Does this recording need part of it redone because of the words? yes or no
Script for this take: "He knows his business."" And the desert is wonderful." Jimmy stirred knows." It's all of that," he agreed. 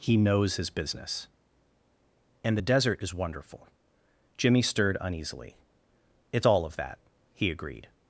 yes